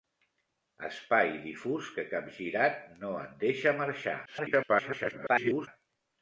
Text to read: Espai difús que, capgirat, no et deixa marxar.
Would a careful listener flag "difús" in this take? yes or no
no